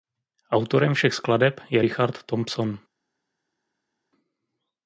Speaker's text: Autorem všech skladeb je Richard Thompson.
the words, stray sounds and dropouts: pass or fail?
pass